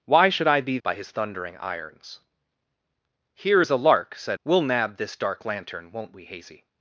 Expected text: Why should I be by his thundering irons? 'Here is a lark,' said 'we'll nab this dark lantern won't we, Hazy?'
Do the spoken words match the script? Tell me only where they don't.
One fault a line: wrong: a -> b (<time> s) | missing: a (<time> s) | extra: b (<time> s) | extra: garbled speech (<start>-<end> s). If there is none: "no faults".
no faults